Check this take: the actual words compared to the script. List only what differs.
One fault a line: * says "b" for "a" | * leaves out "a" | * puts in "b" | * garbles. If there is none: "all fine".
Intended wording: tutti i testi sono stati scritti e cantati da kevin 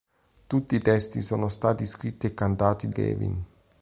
* leaves out "da"